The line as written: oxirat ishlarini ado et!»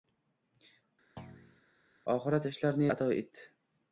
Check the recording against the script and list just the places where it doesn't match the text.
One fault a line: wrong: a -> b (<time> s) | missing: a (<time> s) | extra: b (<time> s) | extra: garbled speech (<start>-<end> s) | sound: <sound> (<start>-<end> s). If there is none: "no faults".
sound: thud (1.2-1.6 s)